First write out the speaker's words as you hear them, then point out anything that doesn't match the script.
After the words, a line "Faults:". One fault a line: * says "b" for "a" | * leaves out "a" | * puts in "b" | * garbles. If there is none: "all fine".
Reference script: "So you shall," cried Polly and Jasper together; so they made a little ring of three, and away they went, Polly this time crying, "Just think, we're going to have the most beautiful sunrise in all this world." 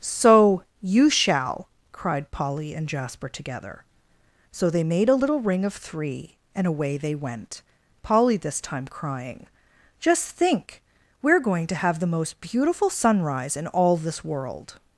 "So you shall," cried Polly and Jasper together; so they made a little ring of three, and away they went, Polly this time crying, "Just think, we're going to have the most beautiful sunrise in all this world."
Faults:
all fine